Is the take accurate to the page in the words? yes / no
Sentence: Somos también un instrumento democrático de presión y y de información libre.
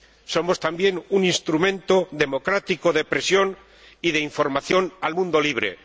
no